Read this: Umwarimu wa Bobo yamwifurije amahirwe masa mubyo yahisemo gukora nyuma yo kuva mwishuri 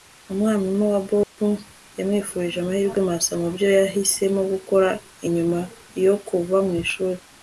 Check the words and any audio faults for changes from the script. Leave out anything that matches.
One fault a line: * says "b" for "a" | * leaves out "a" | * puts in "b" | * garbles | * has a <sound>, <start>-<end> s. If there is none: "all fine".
* has a dropout, 1.2-1.4 s